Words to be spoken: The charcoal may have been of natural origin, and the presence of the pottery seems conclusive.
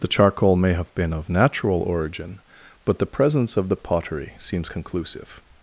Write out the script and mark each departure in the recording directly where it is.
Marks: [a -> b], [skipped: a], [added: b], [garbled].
The charcoal may have been of natural origin, [and -> but] the presence of the pottery seems conclusive.